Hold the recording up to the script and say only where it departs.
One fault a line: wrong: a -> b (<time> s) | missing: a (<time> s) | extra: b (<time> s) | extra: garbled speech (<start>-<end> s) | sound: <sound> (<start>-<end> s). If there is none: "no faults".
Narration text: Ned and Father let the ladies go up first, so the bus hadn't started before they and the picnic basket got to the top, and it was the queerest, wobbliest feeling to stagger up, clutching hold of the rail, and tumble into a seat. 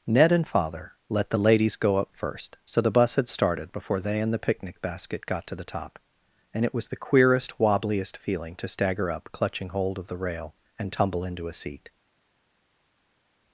wrong: hadn't -> had (3.2 s)